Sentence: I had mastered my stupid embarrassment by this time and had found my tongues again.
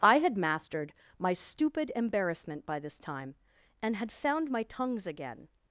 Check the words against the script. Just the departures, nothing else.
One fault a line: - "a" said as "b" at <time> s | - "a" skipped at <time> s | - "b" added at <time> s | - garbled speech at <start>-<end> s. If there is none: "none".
none